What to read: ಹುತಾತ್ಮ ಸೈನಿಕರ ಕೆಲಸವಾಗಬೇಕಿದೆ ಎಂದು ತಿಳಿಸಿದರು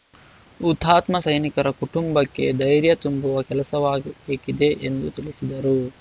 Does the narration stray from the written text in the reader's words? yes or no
yes